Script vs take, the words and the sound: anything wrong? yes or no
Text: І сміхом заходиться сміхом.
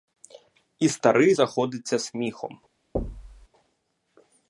yes